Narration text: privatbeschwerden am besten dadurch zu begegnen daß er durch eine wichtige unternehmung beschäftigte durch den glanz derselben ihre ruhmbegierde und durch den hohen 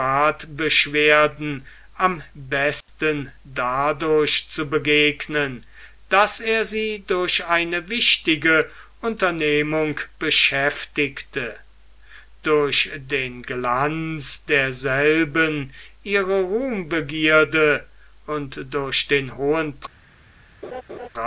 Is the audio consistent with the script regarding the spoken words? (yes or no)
no